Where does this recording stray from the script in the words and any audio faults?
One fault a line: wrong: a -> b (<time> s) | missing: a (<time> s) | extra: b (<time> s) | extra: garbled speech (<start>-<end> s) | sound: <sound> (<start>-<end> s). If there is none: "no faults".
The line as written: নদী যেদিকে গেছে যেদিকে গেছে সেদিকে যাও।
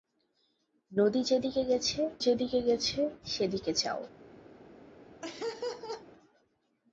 sound: laugh (5.2-6.1 s)